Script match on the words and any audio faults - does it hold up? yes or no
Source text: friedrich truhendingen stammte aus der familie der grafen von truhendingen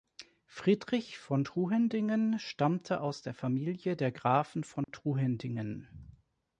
no